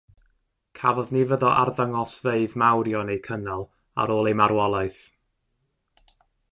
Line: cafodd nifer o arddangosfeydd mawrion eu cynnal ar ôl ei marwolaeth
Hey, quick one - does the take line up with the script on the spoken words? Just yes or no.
yes